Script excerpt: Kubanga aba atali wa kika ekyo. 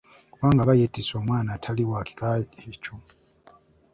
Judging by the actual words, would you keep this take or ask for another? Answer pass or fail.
fail